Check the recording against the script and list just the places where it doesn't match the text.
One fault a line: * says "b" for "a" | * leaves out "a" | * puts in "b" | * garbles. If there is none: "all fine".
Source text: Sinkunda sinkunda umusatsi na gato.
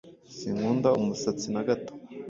* leaves out "sinkunda"